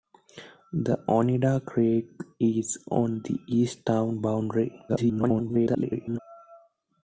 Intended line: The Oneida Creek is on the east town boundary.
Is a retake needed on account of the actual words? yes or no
yes